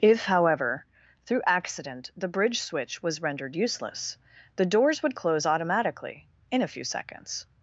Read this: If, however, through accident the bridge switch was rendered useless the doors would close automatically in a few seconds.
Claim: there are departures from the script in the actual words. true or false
false